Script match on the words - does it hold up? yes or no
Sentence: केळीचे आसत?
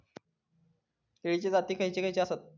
no